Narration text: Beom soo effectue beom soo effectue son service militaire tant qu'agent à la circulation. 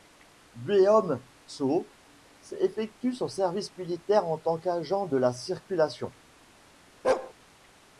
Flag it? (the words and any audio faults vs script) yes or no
yes